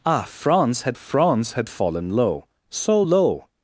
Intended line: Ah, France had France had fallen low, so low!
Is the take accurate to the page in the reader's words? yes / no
yes